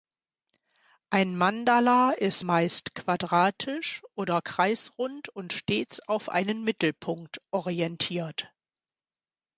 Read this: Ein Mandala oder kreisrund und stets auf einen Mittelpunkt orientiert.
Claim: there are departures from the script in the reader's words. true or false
true